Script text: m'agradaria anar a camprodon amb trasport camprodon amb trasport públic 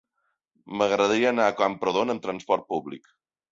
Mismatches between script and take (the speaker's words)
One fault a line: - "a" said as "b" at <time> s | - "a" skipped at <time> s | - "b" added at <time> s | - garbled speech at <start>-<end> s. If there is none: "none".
- "camprodon amb trasport" skipped at 2.7 s